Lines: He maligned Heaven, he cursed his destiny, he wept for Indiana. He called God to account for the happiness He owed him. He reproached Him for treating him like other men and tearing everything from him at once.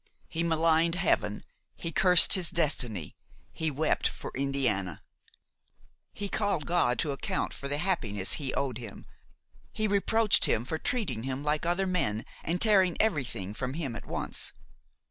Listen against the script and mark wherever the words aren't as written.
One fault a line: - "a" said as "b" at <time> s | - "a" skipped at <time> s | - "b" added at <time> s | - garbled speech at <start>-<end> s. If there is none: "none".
none